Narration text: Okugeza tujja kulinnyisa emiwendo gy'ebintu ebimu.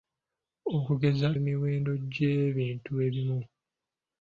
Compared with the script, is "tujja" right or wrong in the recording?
wrong